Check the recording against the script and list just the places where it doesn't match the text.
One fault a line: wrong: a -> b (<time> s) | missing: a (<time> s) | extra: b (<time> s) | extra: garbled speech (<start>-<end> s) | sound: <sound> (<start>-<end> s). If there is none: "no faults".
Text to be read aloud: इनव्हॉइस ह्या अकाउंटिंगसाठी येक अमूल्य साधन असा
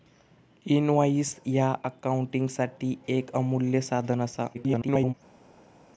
extra: garbled speech (4.5-5.1 s)